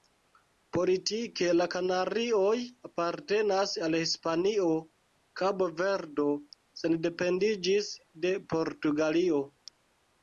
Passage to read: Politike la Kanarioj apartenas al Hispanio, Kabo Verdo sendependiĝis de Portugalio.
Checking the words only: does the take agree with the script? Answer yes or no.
yes